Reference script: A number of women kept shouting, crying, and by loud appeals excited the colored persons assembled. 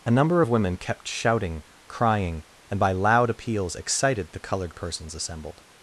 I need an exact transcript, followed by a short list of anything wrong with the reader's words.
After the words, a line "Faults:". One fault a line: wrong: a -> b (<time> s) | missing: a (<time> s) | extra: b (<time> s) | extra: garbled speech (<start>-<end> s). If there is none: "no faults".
A number of women kept shouting, crying, and by loud appeals excited the colored persons assembled.
Faults:
no faults